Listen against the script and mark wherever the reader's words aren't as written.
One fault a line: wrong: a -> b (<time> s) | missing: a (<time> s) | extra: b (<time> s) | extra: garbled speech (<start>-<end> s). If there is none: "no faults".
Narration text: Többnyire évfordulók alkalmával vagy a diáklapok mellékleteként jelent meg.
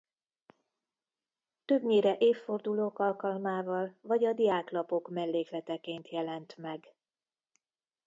no faults